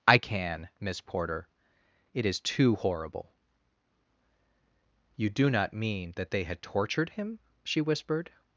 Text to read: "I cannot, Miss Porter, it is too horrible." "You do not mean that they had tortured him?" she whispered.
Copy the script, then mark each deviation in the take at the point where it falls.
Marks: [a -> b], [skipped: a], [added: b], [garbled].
"I [cannot, -> can] Miss Porter, it is too horrible." "You do not mean that they had tortured him?" she whispered.